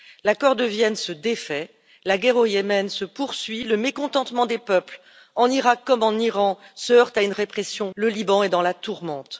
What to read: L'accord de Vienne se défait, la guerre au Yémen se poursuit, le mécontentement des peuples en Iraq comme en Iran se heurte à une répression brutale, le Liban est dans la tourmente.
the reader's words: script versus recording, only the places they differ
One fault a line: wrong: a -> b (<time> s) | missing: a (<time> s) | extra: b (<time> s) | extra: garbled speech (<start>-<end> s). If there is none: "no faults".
missing: brutale (7.9 s)